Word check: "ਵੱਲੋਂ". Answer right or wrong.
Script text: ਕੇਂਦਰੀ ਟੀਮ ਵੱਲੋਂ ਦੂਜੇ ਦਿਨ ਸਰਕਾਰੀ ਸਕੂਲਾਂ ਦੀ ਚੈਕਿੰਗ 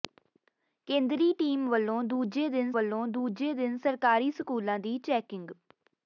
right